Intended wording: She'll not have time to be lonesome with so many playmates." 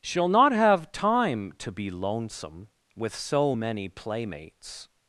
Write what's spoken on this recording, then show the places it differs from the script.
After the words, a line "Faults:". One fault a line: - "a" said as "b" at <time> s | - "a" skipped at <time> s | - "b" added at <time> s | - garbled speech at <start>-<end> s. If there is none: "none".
She'll not have time to be lonesome with so many playmates."
Faults:
none